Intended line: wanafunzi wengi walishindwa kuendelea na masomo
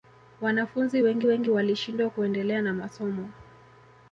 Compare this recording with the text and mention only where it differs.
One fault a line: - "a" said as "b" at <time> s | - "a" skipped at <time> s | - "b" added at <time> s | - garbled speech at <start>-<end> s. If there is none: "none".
- "wengi" added at 1.2 s